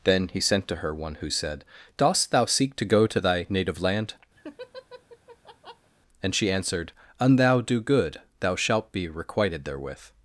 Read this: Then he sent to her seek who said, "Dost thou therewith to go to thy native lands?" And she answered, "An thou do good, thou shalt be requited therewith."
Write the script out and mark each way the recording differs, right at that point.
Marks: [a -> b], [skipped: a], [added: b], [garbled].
Then he sent to her [seek -> one] who said, "Dost thou [therewith -> seek] to go to thy native [lands?" -> land] And she answered, "An thou do good, thou shalt be requited therewith."